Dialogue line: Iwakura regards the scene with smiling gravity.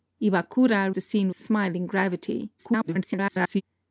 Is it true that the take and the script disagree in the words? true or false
true